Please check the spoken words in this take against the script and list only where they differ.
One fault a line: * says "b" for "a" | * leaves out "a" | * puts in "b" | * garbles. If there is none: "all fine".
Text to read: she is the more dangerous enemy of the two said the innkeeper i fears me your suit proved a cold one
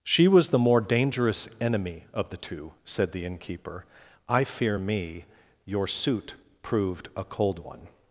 * says "was" for "is"
* says "fear" for "fears"